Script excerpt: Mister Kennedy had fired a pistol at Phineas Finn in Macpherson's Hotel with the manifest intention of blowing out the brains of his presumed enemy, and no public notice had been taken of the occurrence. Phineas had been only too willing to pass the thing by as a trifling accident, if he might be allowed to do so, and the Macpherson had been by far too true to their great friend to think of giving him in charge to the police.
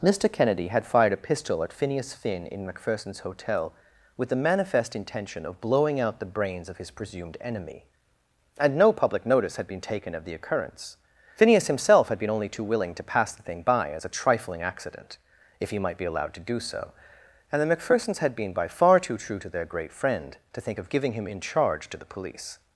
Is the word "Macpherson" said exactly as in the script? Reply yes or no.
no